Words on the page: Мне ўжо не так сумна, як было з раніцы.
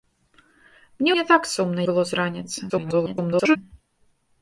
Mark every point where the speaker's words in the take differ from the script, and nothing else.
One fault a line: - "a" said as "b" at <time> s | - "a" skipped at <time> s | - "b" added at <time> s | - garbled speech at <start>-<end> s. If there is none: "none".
- "ўжо" skipped at 1.1 s
- "як" skipped at 1.8 s
- garbled speech at 2.7-3.6 s